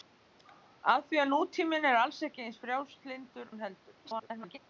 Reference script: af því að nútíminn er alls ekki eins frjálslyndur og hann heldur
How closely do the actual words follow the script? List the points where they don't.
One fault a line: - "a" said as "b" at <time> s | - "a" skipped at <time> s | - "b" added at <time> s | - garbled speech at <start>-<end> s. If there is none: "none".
- "og" skipped at 3.5 s
- garbled speech at 4.0-4.6 s